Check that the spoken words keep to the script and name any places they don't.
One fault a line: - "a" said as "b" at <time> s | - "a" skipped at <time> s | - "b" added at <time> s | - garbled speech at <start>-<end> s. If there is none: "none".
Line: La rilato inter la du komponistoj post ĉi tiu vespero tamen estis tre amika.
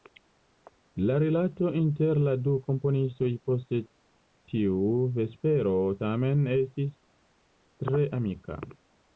- "ĉi" skipped at 3.8 s